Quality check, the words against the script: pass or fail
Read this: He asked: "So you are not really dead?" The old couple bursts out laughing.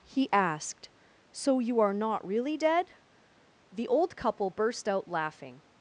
fail